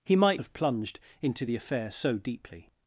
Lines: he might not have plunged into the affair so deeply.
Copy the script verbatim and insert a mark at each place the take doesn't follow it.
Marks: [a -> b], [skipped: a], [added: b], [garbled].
he might [skipped: not] have plunged into the affair so deeply.